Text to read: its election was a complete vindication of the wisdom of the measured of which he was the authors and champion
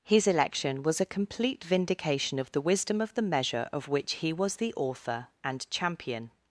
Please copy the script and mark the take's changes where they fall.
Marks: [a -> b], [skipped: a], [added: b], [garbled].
[its -> his] election was a complete vindication of the wisdom of the [measured -> measure] of which he was the [authors -> author] and champion